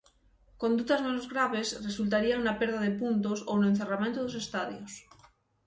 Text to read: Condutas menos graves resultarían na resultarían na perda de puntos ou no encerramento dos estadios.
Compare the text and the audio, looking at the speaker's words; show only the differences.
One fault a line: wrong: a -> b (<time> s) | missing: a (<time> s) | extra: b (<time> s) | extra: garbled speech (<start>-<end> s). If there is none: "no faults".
missing: resultarían na (2.6 s)